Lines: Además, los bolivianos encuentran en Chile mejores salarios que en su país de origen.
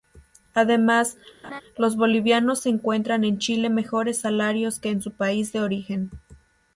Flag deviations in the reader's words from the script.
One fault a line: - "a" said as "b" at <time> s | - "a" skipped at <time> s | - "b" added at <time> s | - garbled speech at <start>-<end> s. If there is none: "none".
none